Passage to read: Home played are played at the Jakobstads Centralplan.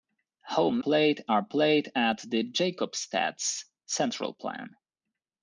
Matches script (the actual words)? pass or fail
pass